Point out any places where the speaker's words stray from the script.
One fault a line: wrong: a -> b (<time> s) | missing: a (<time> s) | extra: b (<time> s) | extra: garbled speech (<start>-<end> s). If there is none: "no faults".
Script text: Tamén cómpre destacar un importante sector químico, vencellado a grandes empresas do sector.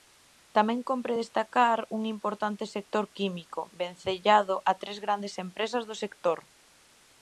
extra: tres (4.8 s)